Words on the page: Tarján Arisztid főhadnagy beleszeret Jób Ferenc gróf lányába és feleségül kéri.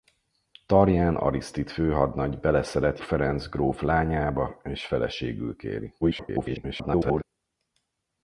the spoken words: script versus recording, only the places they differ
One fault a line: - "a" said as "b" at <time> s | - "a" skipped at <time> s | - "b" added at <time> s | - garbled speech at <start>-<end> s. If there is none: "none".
- "Jób" skipped at 3.0 s
- garbled speech at 6.0-7.2 s